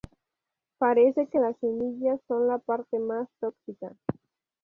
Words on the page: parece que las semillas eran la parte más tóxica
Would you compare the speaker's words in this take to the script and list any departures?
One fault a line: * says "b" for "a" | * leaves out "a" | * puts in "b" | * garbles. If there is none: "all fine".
* says "son" for "eran"